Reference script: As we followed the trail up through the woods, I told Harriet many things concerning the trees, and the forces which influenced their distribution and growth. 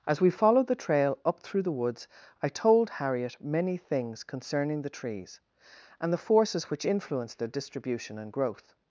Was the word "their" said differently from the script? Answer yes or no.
no